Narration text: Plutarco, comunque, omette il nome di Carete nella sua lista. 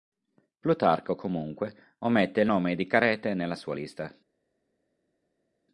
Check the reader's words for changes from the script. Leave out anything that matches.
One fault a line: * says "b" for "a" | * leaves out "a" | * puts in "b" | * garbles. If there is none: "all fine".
all fine